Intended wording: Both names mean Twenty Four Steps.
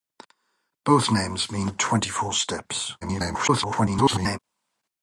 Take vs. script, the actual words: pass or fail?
fail